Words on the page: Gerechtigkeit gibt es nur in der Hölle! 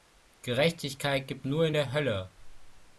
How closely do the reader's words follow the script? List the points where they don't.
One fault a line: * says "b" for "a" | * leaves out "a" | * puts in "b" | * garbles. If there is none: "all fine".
* leaves out "es"